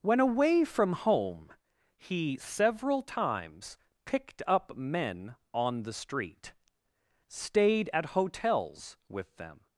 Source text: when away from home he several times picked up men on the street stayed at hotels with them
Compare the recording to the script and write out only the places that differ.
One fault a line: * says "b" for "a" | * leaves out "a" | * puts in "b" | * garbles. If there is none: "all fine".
all fine